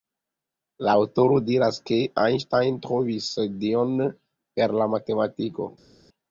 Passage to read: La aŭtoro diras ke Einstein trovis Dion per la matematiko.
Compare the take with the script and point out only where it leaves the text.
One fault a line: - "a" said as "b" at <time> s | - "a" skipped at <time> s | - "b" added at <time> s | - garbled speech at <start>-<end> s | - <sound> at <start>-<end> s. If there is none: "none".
none